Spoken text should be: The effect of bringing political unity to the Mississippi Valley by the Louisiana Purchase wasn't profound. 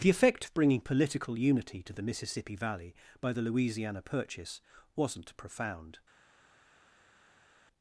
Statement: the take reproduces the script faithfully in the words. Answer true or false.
true